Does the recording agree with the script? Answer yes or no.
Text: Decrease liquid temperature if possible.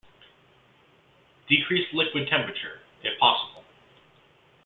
yes